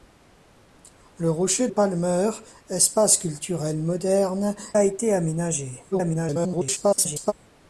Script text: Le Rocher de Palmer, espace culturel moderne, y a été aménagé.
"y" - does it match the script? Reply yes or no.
no